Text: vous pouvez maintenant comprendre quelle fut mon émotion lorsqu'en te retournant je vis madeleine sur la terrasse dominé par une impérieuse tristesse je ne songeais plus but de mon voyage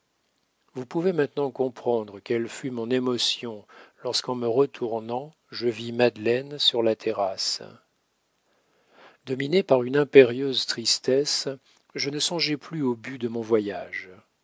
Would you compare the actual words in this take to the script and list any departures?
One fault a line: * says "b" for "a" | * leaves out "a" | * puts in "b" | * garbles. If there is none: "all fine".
* says "me" for "te"
* puts in "au"